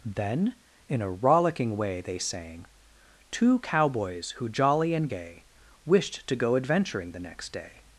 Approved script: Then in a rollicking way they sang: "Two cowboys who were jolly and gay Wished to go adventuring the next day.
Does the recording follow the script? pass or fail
fail